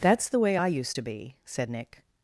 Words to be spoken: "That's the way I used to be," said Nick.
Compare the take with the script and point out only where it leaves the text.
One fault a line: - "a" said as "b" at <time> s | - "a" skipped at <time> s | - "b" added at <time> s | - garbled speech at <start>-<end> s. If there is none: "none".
none